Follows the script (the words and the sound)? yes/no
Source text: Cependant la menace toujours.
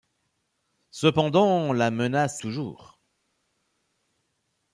yes